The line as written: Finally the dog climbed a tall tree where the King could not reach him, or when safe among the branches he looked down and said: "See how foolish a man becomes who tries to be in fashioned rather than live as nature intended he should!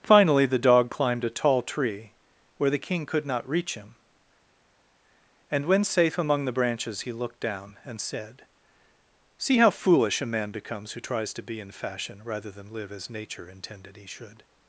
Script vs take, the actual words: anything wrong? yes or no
yes